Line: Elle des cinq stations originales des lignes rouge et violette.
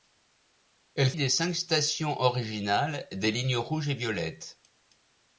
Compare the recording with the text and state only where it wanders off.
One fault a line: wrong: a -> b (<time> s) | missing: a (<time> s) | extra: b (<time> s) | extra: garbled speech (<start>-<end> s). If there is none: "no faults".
no faults